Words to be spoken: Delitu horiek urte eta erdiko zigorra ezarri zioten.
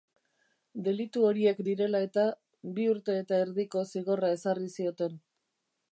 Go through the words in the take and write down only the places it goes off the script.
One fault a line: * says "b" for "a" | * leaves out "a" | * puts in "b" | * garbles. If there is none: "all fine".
* puts in "direla eta bi"